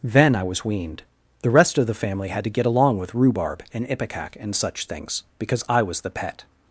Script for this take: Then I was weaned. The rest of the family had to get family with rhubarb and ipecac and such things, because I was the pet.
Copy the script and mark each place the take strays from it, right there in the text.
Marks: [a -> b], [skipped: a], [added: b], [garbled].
Then I was weaned. The rest of the family had to get [family -> along] with rhubarb and ipecac and such things, because I was the pet.